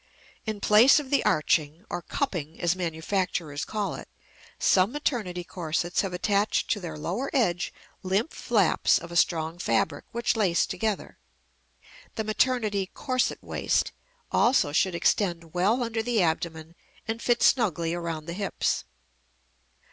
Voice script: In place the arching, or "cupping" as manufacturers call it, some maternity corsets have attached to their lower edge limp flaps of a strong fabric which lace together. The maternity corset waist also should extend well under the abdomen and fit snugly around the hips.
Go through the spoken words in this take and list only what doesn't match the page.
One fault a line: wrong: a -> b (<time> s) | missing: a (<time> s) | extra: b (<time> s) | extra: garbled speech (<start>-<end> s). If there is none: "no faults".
extra: of (1.0 s)